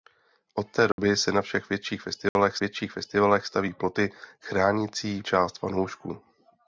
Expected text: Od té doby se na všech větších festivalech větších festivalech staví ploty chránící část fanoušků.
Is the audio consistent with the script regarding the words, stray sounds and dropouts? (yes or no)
no